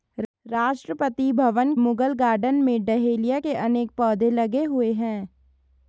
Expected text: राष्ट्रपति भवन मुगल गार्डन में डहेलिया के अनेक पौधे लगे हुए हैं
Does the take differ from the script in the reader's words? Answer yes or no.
no